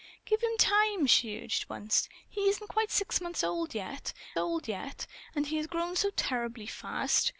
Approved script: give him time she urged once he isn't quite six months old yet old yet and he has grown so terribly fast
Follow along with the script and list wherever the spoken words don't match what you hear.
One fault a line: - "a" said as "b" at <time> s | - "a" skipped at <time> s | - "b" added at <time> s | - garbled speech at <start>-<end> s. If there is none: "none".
none